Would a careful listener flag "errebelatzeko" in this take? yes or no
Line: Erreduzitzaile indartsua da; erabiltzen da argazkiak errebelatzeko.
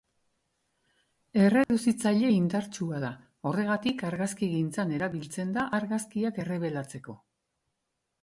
no